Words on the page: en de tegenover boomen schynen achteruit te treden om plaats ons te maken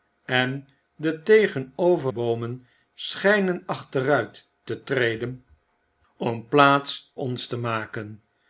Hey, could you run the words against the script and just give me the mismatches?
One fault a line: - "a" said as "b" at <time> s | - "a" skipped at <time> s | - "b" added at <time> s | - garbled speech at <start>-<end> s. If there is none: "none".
none